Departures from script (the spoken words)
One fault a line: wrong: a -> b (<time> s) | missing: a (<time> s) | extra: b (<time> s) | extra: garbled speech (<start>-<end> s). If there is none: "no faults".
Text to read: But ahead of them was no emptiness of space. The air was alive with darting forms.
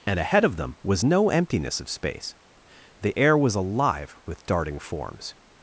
wrong: But -> And (0.1 s)